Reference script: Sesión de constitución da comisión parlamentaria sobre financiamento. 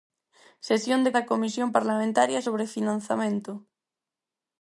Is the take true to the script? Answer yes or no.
no